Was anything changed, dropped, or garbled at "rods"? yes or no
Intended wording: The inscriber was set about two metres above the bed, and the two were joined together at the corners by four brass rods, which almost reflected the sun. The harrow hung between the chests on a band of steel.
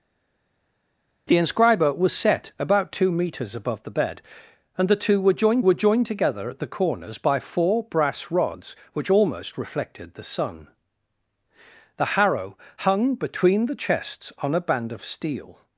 no